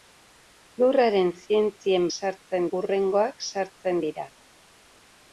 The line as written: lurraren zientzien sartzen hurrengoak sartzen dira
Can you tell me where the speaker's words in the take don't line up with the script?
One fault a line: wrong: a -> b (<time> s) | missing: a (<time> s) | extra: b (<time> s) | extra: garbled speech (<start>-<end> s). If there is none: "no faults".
no faults